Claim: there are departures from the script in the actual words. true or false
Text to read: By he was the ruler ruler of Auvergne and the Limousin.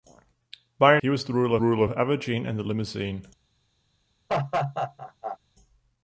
false